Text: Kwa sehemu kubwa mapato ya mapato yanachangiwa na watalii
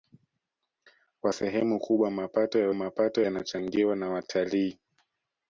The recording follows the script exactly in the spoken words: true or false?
true